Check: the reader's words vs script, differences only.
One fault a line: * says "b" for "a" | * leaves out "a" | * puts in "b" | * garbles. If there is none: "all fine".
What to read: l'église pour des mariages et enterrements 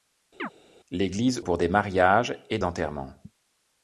all fine